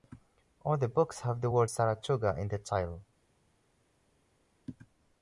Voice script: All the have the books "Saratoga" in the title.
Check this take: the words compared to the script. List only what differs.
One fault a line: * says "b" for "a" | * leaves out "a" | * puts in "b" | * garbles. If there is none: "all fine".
* puts in "books"
* says "word" for "books"